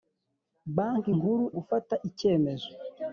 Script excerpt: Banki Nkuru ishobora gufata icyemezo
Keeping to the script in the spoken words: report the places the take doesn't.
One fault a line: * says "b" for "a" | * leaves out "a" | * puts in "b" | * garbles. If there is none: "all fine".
* leaves out "ishobora"